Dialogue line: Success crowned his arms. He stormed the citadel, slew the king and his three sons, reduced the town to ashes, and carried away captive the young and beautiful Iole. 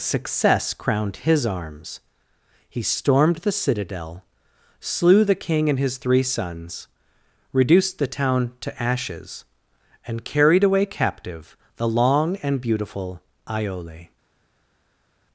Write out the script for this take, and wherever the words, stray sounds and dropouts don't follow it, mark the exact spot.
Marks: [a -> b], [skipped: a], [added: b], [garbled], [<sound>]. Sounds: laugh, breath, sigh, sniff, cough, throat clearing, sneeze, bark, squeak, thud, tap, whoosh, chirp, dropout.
Success crowned his arms. He stormed the citadel, slew the king and his three sons, reduced the town to ashes, and carried away captive the [young -> long] and beautiful Iole.